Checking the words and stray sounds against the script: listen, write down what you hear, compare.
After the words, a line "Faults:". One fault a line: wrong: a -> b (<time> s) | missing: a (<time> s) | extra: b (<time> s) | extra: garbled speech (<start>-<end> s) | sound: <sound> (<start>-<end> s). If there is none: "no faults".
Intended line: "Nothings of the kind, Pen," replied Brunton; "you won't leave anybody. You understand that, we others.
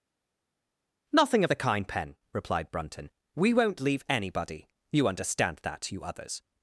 "Nothing of the kind, Pen," replied Brunton; "we won't leave anybody. You understand that, you others.
Faults:
wrong: Nothings -> Nothing (1.1 s)
wrong: you -> we (3.4 s)
wrong: we -> you (5.9 s)